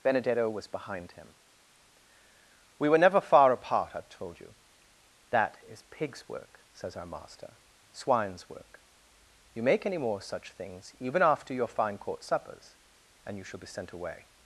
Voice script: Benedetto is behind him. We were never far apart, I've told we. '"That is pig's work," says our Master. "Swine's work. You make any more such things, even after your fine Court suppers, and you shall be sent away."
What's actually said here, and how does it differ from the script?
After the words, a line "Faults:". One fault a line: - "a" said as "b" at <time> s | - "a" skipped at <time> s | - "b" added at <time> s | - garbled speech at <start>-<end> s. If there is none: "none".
Benedetto was behind him. We were never far apart, I've told you. '"That is pig's work," says our Master. "Swine's work. You make any more such things, even after your fine Court suppers, and you shall be sent away."
Faults:
- "is" said as "was" at 0.5 s
- "we" said as "you" at 4.4 s